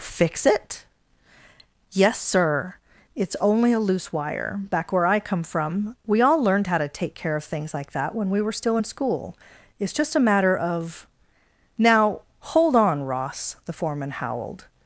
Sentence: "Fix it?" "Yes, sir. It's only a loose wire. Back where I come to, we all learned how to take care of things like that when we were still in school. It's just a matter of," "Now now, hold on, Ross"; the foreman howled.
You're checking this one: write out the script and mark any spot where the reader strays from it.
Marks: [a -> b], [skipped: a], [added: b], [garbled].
"Fix it?" "Yes, sir. It's only a loose wire. Back where I come [to, -> from] we all learned how to take care of things like that when we were still in school. It's just a matter of," "Now [skipped: now,] hold on, Ross"; the foreman howled.